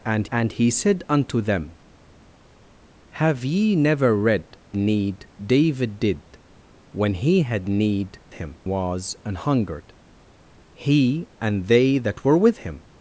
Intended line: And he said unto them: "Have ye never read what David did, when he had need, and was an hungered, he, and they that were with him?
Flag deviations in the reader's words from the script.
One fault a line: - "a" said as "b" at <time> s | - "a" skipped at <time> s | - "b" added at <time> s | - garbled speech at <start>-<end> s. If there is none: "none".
- "and" added at 0.3 s
- "what" said as "need" at 4.8 s
- "and" said as "him" at 8.3 s